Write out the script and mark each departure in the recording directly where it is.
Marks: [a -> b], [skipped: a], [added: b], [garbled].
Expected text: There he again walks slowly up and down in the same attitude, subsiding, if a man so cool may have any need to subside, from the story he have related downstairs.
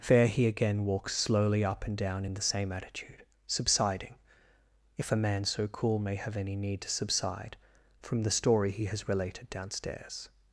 There he again walks slowly up and down in the same attitude, subsiding, if a man so cool may have any need to subside, from the story he [have -> has] related downstairs.